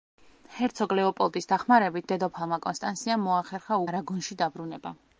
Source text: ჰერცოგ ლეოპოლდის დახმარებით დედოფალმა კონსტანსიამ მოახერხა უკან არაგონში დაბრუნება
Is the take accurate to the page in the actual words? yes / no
no